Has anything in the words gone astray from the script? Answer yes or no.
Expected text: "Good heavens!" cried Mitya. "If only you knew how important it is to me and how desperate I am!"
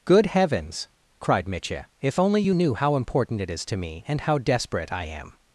no